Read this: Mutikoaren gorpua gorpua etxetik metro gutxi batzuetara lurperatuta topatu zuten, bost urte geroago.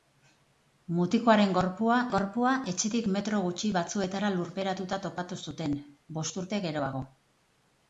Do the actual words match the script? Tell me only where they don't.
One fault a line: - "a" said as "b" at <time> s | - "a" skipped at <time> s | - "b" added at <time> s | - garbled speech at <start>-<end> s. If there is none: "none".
none